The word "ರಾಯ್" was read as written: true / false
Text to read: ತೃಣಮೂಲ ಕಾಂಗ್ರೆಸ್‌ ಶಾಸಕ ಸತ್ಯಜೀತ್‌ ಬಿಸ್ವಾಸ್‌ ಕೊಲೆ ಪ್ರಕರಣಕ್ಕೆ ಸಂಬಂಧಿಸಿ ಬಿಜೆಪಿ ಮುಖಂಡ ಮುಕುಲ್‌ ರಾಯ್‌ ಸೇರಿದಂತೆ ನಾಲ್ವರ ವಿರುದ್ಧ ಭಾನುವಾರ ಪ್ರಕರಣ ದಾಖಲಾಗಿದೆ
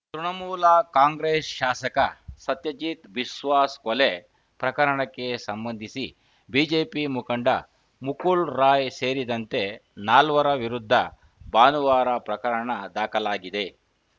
true